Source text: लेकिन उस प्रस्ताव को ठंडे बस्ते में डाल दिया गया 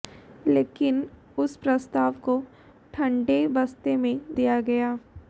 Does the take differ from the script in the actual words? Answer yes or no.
yes